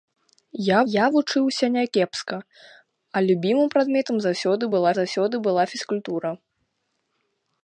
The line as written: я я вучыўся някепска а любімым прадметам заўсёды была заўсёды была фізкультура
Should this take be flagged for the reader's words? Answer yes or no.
no